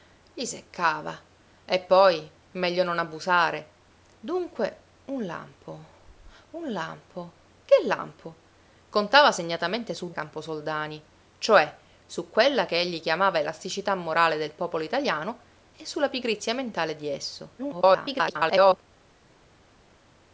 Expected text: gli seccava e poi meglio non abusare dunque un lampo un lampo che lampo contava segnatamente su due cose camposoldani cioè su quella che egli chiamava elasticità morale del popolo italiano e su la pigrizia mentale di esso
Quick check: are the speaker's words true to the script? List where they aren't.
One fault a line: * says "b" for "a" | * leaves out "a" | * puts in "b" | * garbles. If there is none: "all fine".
* leaves out "due cose"
* garbles